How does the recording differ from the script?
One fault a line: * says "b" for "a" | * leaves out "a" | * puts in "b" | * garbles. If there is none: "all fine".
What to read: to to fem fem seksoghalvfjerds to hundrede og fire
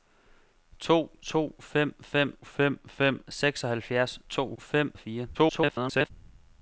* puts in "fem fem"
* says "fem" for "hundrede"
* garbles